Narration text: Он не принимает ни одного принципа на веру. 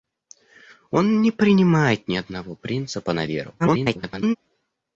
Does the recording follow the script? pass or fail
fail